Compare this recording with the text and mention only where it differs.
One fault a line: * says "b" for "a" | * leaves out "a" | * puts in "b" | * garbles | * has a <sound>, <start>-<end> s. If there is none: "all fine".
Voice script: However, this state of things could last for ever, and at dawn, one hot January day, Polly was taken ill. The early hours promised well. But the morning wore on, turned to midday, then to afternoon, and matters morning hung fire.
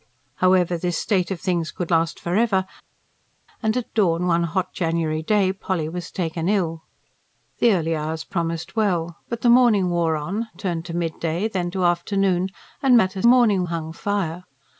all fine